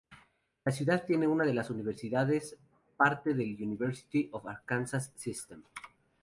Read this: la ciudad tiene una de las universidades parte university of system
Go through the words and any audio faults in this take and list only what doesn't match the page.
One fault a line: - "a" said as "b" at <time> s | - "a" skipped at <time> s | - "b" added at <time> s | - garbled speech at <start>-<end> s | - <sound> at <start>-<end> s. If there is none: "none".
- "del" added at 3.4 s
- "arkansas" added at 4.5 s